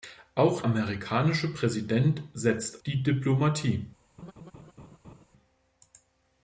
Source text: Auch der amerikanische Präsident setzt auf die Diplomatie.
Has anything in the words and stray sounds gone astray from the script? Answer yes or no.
yes